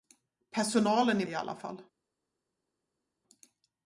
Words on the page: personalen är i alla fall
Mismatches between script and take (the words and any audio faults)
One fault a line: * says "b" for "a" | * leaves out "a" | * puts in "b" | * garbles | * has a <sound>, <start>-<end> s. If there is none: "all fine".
all fine